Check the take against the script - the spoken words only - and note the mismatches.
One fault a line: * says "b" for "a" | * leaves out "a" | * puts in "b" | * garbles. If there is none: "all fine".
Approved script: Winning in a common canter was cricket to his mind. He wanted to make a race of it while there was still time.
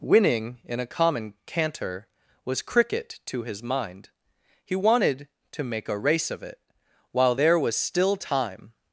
all fine